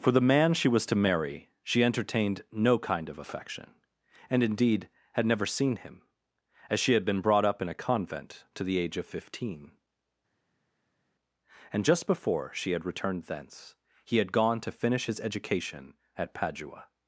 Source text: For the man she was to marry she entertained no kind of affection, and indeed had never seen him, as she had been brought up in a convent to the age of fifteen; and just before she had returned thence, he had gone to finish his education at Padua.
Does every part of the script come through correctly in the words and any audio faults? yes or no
yes